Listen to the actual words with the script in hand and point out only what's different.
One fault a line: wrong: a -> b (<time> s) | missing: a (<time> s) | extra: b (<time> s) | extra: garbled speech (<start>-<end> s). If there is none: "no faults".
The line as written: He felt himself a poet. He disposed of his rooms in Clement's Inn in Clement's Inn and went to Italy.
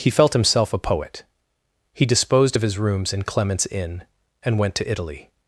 missing: in Clement's Inn (4.0 s)